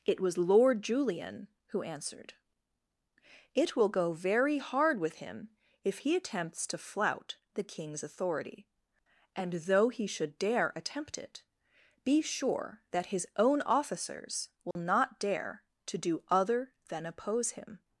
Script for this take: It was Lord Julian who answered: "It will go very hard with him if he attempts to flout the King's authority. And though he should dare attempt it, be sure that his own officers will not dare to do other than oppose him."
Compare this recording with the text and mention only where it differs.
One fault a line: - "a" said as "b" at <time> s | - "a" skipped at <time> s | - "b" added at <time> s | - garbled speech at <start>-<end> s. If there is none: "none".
none